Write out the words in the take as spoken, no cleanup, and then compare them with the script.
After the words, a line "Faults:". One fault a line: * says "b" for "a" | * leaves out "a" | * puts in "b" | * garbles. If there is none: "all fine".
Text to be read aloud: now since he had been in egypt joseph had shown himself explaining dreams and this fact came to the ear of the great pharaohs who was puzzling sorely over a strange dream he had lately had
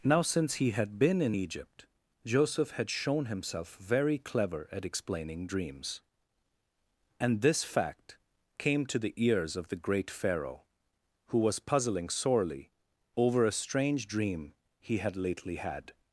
now since he had been in egypt joseph had shown himself very clever at explaining dreams and this fact came to the ears of the great pharaoh who was puzzling sorely over a strange dream he had lately had
Faults:
* puts in "very clever at"
* says "ears" for "ear"
* says "pharaoh" for "pharaohs"